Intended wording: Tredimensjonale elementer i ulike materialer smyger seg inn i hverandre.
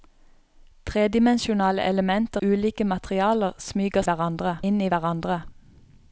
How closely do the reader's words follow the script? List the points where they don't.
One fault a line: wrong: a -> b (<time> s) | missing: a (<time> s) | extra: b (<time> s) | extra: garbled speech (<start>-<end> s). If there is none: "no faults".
missing: i (2.4 s)
wrong: seg -> hverandre (4.0 s)